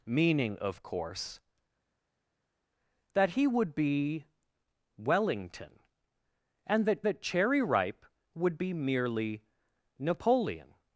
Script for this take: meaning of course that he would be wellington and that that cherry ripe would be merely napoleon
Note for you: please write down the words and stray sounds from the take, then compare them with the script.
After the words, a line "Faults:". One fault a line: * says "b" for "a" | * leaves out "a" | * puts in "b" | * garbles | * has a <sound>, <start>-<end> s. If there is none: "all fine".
meaning of course that he would be wellington and that that cherry ripe would be merely napoleon
Faults:
all fine